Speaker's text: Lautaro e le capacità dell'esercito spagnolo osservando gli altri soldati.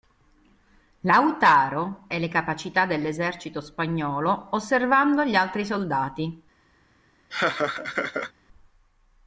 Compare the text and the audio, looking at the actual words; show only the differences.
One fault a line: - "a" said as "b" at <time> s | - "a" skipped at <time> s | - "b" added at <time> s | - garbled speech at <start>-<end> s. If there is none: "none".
none